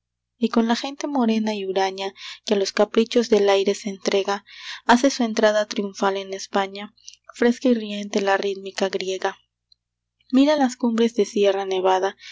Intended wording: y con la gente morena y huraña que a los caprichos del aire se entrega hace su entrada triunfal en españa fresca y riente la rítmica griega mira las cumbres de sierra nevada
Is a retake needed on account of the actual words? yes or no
no